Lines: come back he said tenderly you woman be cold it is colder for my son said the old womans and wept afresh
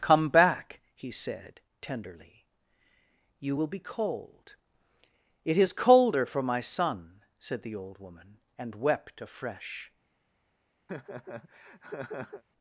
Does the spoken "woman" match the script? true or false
false